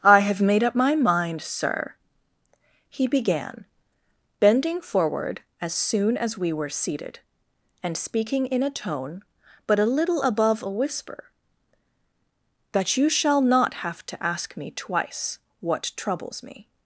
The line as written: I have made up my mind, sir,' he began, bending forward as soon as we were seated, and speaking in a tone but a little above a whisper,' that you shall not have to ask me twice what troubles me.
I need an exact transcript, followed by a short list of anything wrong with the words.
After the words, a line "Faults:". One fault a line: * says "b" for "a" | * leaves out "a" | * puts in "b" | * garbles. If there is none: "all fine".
I have made up my mind, sir,' he began, bending forward as soon as we were seated, and speaking in a tone but a little above a whisper,' that you shall not have to ask me twice what troubles me.
Faults:
all fine